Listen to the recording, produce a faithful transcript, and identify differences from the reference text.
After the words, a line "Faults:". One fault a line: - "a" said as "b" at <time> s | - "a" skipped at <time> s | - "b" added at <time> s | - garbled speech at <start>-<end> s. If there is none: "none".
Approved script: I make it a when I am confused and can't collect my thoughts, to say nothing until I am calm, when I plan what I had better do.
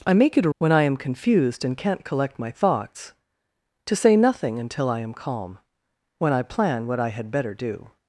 I make it a when I am confused and can't collect my thoughts, to say nothing until I am calm, when I plan what I had better do.
Faults:
none